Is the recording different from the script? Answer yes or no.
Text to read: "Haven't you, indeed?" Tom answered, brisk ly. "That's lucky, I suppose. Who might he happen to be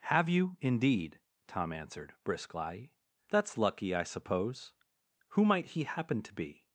yes